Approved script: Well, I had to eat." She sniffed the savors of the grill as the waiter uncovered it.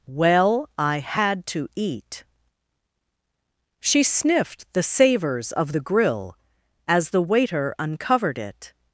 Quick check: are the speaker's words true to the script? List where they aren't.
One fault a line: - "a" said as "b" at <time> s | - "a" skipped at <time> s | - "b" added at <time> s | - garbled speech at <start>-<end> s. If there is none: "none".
none